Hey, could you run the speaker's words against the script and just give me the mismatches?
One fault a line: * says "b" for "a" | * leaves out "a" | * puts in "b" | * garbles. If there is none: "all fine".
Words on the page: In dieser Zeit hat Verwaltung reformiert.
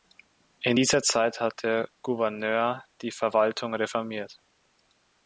* puts in "der Gouverneur die"